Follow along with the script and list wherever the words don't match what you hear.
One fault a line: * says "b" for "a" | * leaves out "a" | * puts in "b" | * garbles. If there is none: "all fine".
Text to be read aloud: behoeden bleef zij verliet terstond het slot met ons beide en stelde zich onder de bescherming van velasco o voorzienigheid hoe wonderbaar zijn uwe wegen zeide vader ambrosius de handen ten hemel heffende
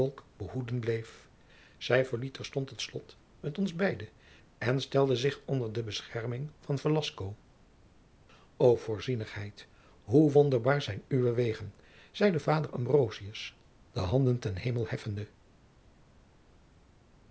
all fine